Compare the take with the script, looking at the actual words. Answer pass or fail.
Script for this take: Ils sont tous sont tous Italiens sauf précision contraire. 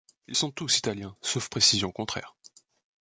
fail